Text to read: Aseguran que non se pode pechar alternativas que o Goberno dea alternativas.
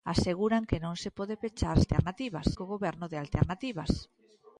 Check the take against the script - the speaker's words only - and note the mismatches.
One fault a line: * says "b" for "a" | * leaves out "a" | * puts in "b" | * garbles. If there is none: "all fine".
all fine